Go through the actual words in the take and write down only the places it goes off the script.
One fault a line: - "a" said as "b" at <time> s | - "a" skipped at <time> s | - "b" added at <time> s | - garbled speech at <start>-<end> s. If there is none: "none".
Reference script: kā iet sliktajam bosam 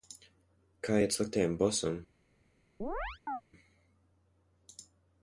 none